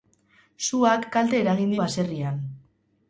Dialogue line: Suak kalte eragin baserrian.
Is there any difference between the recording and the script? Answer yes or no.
no